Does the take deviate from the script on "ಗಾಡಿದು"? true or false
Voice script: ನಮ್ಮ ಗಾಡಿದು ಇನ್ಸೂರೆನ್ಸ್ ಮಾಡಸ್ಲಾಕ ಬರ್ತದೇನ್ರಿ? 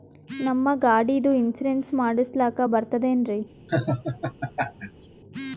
false